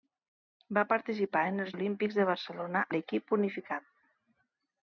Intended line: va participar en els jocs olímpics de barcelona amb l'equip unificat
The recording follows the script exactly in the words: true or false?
false